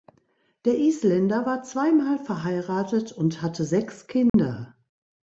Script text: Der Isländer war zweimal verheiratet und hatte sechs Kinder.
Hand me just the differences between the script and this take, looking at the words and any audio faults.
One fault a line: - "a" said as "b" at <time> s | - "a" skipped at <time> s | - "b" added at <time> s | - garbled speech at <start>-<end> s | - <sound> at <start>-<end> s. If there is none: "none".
- dropout at 4.3-4.3 s